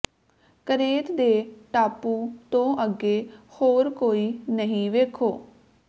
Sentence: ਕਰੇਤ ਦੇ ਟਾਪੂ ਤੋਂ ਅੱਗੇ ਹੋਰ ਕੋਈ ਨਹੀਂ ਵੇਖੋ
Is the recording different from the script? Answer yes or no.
no